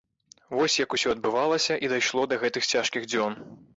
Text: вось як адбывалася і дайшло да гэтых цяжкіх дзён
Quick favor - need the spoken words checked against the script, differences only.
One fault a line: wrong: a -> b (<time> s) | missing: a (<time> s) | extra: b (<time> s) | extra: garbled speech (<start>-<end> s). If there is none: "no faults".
extra: усё (1.0 s)